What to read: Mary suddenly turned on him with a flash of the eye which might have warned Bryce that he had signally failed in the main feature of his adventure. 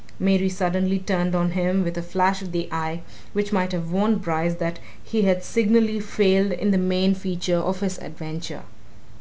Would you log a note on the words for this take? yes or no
no